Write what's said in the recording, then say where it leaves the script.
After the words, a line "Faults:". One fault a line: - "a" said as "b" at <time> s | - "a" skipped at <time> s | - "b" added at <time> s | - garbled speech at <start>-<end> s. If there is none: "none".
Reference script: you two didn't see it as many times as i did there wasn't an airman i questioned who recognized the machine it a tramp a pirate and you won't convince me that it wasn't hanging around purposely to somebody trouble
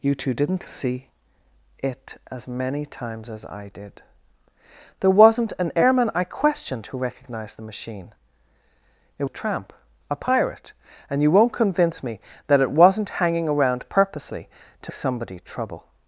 you two didn't see it as many times as i did there wasn't an airman i questioned who recognized the machine it a tramp a pirate and you won't convince me that it wasn't hanging around purposely to somebody trouble
Faults:
none